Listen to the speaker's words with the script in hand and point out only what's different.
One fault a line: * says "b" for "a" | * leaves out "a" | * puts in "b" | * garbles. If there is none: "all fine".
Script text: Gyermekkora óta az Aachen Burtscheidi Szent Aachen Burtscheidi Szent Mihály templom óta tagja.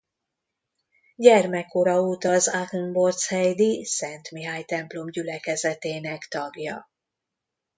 * leaves out "Aachen Burtscheidi Szent"
* says "gyülekezetének" for "óta"